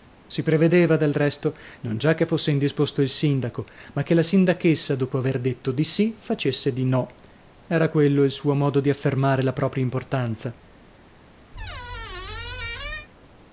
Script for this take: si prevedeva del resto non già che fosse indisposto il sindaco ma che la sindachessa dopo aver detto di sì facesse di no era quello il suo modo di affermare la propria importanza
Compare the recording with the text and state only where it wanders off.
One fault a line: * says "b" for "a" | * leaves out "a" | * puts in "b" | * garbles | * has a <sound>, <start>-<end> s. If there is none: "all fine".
* has a squeak, 11.5-13.1 s